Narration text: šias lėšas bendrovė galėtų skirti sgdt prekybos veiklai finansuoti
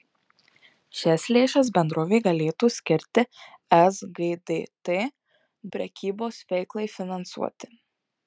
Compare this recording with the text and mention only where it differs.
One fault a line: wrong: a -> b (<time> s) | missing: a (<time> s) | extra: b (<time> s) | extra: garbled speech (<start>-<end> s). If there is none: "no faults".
no faults